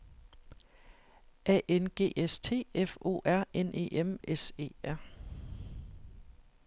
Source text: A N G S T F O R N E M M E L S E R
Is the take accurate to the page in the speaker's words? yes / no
no